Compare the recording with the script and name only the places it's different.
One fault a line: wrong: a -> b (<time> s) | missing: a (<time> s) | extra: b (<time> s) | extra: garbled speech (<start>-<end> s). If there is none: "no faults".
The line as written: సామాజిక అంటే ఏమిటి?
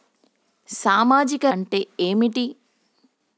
no faults